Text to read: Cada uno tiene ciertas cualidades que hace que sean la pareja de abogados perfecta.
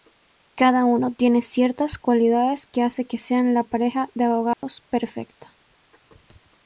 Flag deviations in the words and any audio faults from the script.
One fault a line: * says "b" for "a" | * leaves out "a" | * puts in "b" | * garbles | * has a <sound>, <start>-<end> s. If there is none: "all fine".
* has a dropout, 4.5-4.6 s